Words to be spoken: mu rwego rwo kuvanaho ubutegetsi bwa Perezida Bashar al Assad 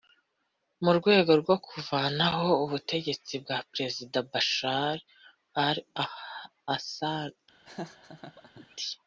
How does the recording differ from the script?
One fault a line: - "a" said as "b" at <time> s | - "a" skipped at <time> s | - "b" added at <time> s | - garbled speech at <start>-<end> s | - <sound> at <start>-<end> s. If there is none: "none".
- laugh at 7.7-8.8 s